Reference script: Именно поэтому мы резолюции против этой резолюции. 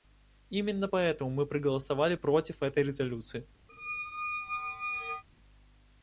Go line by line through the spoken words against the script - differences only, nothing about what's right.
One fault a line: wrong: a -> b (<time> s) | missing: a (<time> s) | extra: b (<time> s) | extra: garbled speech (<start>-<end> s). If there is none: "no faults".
wrong: резолюции -> проголосовали (1.4 s)